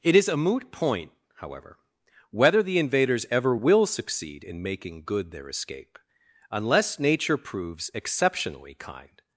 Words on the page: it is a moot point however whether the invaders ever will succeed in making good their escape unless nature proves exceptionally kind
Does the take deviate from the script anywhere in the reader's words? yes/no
no